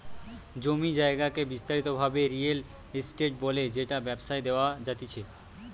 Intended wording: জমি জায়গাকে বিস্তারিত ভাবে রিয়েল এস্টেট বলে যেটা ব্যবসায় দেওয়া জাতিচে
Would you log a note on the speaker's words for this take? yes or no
no